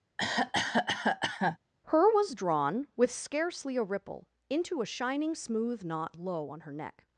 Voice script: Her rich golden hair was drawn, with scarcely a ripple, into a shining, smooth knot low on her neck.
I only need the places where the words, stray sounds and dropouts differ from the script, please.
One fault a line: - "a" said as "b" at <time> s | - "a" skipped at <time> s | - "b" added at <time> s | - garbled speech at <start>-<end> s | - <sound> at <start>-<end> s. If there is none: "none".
- cough at 0.2-1.6 s
- "rich golden hair" skipped at 2.1 s